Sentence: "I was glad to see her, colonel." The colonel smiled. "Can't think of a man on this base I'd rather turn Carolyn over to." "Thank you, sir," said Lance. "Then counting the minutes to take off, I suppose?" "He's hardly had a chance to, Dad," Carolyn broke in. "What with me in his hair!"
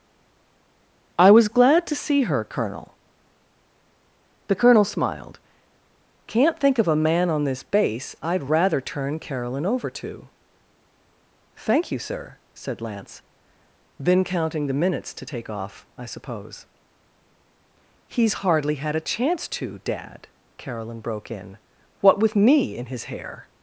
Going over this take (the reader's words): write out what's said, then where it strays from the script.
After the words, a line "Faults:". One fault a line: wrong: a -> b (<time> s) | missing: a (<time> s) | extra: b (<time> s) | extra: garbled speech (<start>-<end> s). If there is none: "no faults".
"I was glad to see her, colonel." The colonel smiled. "Can't think of a man on this base I'd rather turn Carolyn over to." "Thank you, sir," said Lance. "Then counting the minutes to take off, I suppose?" "He's hardly had a chance to, Dad," Carolyn broke in. "What with me in his hair!"
Faults:
no faults